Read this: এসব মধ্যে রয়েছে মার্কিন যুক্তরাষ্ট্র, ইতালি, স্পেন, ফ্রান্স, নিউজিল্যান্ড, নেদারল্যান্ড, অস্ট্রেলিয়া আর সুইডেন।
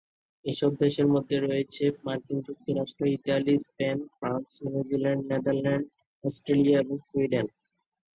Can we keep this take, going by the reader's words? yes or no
no